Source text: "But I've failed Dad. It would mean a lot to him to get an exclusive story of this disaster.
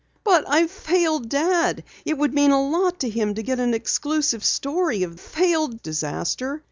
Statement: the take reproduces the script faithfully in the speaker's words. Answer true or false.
false